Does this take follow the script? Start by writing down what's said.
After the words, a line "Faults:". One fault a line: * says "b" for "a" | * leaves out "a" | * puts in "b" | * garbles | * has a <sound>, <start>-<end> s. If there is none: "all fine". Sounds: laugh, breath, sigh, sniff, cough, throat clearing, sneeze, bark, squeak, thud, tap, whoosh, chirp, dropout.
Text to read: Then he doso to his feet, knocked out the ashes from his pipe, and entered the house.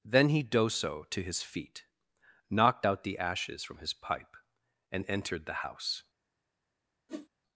Then he doso to his feet, knocked out the ashes from his pipe, and entered the house.
Faults:
* has a whoosh, 7.1-7.3 s